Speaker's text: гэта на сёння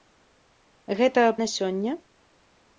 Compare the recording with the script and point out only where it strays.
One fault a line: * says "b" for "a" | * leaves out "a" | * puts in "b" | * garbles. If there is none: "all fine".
all fine